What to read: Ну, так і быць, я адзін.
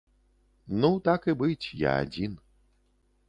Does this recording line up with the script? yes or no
yes